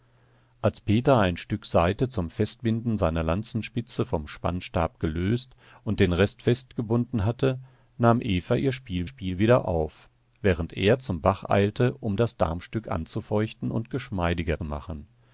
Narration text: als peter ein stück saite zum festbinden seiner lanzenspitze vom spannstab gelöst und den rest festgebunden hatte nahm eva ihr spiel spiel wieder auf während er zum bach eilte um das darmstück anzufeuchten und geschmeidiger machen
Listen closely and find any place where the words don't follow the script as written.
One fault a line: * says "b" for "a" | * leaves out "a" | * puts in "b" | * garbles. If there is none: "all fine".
all fine